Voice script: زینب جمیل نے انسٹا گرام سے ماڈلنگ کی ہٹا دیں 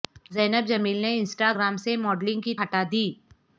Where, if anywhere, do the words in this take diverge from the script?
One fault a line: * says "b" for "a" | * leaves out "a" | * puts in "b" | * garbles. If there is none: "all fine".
all fine